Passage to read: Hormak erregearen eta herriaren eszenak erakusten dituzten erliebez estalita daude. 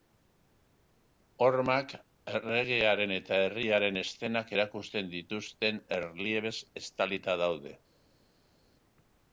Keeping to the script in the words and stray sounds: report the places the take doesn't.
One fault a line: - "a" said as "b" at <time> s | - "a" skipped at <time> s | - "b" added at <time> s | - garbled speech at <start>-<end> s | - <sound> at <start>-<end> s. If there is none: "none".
none